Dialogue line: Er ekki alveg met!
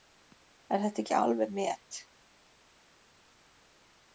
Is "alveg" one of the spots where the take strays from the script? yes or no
no